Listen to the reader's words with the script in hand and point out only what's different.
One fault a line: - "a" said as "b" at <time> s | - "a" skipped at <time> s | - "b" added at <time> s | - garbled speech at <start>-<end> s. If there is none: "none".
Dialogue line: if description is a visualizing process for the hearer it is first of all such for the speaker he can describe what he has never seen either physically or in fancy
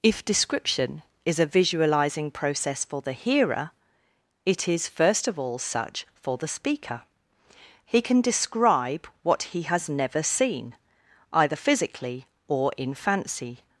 none